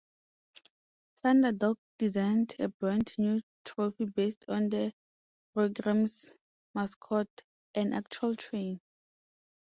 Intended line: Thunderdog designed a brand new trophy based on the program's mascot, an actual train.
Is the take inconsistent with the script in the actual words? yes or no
no